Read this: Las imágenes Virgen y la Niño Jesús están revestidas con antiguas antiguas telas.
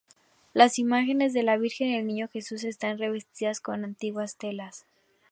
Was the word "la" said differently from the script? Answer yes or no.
yes